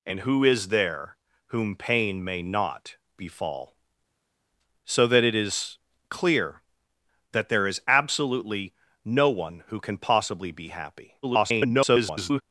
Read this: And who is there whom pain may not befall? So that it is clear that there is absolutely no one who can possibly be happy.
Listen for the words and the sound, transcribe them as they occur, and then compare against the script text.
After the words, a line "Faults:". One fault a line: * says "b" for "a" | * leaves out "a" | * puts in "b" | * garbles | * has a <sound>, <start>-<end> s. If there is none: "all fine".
And who is there whom pain may not befall? So that it is clear that there is absolutely no one who can possibly be happy. [garbled]
Faults:
* garbles